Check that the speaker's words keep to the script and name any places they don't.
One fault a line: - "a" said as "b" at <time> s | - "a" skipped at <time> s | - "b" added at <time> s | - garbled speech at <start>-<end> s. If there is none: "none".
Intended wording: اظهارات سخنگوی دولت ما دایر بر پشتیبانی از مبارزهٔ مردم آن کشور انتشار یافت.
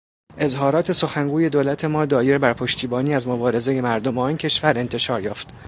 none